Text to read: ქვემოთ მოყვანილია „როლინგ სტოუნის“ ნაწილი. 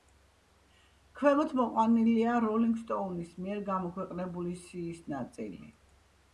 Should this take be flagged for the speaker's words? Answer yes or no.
yes